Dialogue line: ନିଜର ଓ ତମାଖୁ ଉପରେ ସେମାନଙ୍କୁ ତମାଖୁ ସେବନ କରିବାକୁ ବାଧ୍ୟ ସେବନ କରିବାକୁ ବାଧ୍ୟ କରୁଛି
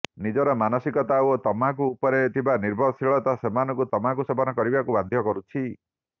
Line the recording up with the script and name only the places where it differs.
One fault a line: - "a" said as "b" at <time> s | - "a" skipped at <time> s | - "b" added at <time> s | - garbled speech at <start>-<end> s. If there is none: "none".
- "ମାନସିକତା" added at 0.6 s
- "ଥିବା ନିର୍ଭରଶୀଳତା" added at 2.4 s
- "ସେବନ କରିବାକୁ ବାଧ୍ୟ" skipped at 5.3 s